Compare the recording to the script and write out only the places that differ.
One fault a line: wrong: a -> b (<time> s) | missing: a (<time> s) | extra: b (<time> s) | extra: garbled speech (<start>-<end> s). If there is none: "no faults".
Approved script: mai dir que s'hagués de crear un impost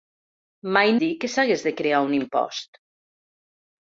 no faults